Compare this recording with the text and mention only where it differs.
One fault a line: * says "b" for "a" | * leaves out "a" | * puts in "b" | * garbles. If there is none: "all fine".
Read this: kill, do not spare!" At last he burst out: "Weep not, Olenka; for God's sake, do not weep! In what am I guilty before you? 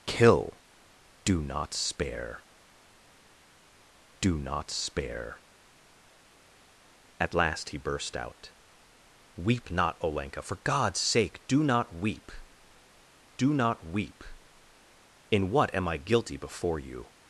* puts in "do not spare"
* puts in "do not weep"